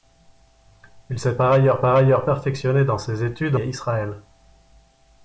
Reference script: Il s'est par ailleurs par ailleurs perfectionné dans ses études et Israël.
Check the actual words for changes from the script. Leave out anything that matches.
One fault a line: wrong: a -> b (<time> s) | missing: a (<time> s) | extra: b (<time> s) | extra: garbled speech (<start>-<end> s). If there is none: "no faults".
no faults